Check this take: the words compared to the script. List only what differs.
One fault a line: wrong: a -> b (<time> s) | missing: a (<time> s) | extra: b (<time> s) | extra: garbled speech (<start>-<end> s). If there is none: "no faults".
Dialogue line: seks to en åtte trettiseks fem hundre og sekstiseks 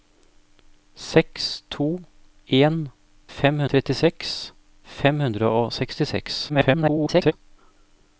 wrong: åtte -> fem (3.4 s)
extra: garbled speech (6.5-7.3 s)